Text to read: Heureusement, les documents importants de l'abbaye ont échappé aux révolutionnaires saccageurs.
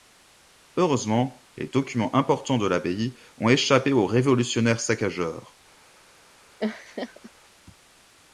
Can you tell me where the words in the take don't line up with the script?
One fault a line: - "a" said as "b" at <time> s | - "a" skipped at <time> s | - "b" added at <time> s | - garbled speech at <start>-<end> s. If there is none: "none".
none